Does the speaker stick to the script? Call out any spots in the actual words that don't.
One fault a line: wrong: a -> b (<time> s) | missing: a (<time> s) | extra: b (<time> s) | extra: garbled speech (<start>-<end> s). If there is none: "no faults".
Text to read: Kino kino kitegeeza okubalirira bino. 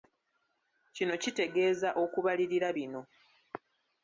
missing: kino (1.1 s)